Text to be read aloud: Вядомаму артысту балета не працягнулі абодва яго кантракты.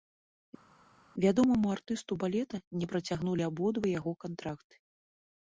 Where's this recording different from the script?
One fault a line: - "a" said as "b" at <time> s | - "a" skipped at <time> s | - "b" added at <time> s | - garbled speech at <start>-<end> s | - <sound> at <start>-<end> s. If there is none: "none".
none